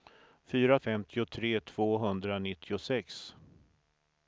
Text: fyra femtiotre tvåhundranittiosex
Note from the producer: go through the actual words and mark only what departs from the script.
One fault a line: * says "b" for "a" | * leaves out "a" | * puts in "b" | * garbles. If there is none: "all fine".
all fine